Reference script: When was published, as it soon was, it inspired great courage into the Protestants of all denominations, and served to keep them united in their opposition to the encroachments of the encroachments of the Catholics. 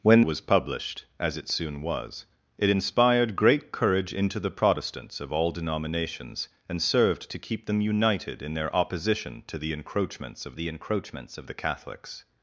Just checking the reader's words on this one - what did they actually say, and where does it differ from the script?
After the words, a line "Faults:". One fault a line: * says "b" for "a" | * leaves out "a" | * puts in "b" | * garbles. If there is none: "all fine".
When was published, as it soon was, it inspired great courage into the Protestants of all denominations, and served to keep them united in their opposition to the encroachments of the encroachments of the Catholics.
Faults:
all fine